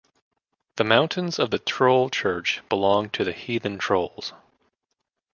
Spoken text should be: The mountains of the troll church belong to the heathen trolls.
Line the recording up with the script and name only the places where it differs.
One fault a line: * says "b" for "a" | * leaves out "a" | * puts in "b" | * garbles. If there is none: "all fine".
all fine